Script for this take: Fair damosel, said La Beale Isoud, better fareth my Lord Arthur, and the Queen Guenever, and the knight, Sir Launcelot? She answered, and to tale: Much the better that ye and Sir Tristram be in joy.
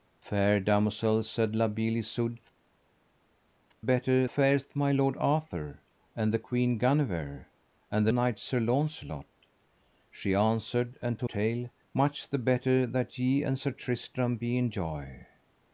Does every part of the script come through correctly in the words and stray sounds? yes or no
yes